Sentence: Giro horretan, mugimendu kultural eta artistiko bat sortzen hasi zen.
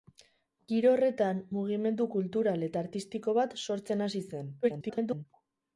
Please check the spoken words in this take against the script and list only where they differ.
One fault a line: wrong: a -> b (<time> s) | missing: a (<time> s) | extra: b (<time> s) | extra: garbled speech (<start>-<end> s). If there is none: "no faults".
extra: garbled speech (4.6-5.3 s)